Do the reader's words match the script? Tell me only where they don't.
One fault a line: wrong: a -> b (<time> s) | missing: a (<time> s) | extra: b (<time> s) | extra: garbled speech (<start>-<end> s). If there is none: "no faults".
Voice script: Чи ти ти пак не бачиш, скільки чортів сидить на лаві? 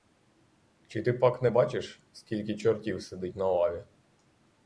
missing: ти (1.1 s)